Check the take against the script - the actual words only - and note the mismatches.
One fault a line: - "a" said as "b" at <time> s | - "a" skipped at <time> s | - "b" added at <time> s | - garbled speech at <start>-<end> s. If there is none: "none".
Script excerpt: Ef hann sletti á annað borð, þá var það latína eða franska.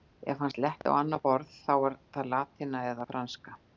none